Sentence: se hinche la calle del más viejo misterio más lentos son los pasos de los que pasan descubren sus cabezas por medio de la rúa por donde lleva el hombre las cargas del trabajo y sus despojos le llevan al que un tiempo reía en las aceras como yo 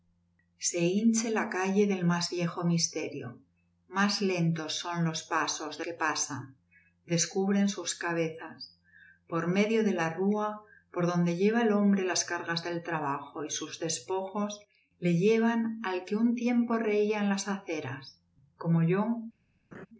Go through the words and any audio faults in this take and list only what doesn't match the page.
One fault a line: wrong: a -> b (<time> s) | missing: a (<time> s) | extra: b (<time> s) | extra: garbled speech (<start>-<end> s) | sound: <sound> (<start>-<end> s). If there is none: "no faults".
missing: los (5.8 s)
sound: laugh (19.7-19.9 s)